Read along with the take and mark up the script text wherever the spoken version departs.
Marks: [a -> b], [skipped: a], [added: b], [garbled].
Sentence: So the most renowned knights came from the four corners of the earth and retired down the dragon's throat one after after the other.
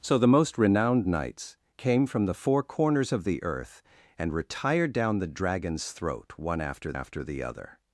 So the most renowned knights came from the four corners of the earth and retired down the dragon's throat one after after the other.